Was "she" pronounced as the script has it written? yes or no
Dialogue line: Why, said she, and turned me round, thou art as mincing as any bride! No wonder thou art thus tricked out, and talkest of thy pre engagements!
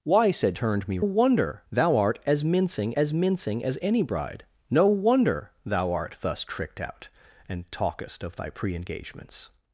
no